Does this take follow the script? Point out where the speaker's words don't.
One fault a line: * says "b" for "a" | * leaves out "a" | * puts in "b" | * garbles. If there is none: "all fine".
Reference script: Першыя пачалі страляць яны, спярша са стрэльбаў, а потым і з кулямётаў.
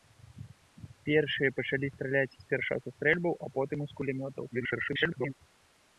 * leaves out "яны"
* garbles